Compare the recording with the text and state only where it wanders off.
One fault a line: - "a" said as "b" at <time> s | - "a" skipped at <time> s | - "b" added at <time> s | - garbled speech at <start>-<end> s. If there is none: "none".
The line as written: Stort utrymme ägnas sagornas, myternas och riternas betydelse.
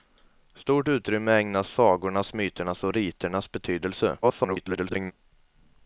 - garbled speech at 4.2-5.1 s